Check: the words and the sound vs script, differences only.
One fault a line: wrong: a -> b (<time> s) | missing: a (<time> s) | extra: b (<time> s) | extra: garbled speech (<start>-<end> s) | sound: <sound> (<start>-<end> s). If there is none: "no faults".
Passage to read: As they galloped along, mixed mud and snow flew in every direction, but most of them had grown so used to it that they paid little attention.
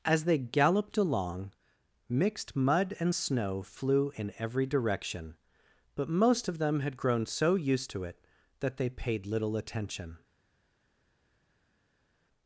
no faults